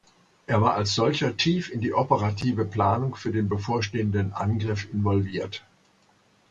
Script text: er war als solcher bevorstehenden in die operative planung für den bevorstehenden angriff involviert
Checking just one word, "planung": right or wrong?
right